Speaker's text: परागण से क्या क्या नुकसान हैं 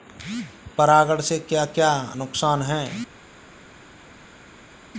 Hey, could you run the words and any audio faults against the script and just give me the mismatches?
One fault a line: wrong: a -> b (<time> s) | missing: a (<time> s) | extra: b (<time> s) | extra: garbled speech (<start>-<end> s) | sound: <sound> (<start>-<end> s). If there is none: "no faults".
no faults